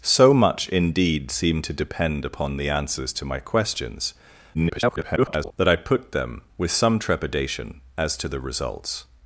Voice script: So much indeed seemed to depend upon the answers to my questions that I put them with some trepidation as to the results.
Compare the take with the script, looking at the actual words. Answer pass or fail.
fail